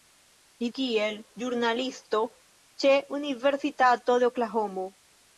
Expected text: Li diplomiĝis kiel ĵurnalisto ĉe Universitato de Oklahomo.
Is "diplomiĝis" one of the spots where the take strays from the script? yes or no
yes